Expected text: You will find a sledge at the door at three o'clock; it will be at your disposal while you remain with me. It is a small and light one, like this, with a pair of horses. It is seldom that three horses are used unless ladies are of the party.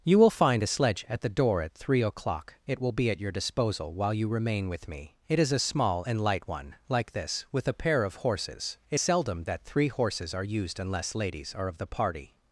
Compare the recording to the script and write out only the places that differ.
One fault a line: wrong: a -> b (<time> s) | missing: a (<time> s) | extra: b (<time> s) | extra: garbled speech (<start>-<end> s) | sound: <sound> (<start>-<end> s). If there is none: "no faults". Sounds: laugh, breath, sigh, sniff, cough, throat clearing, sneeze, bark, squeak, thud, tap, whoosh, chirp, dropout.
missing: is (9.0 s)